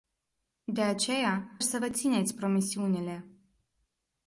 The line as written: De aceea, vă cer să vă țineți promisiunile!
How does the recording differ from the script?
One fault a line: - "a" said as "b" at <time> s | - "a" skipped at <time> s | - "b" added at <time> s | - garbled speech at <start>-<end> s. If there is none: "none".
- "vă cer" skipped at 1.6 s